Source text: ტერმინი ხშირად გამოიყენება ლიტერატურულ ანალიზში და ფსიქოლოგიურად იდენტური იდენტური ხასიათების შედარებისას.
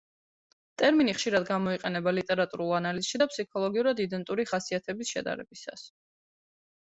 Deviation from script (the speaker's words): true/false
true